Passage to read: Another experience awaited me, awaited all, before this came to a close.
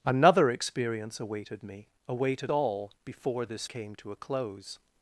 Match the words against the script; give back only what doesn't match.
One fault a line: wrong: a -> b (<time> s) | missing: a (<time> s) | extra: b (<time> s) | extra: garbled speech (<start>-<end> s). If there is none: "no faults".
no faults